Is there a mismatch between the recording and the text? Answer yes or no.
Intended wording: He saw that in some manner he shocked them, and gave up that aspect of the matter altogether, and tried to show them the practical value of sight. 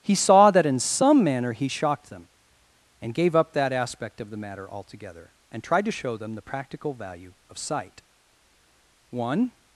yes